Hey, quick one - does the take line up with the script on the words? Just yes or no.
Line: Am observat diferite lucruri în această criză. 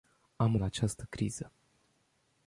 no